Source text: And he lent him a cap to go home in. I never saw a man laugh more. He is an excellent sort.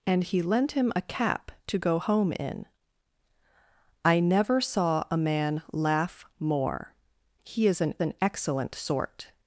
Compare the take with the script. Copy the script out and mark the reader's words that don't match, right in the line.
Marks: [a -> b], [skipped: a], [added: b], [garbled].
And he lent him a cap to go home in. I never saw a man laugh more. He is an [added: an] excellent sort.